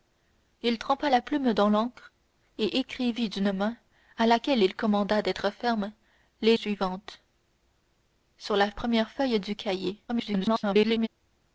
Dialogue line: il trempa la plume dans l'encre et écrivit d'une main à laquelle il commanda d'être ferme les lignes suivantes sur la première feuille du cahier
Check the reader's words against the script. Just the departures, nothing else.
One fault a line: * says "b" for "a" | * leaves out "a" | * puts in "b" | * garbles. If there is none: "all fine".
* leaves out "lignes"
* garbles